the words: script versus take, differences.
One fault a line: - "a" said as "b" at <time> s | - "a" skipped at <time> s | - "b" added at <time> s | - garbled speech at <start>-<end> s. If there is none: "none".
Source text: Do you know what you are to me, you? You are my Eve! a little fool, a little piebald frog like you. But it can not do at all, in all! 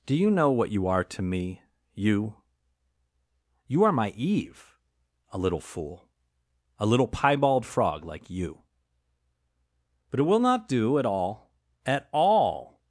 - "can" said as "will" at 10.2 s
- "in" said as "at" at 11.8 s